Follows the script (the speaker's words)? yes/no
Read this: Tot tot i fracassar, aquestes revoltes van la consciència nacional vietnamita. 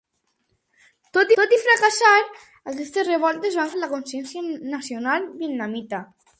yes